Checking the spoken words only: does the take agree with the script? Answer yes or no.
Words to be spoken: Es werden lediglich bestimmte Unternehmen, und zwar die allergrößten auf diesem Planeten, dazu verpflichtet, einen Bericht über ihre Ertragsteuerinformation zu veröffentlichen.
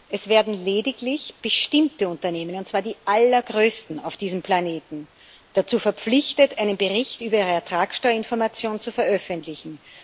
yes